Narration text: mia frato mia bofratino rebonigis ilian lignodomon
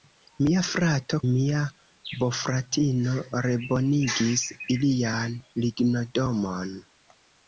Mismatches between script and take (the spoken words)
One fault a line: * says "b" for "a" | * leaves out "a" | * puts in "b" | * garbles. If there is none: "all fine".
all fine